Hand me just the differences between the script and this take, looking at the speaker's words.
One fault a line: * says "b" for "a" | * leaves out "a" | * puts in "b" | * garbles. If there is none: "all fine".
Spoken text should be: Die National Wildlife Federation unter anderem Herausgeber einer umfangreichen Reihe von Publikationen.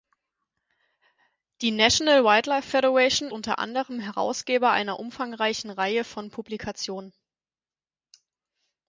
all fine